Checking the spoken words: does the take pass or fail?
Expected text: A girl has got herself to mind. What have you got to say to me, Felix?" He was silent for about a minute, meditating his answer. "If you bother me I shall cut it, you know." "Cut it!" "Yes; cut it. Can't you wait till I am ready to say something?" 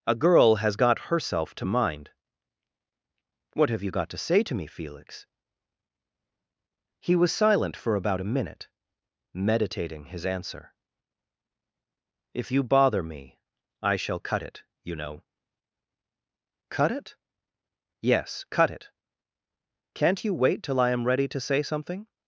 pass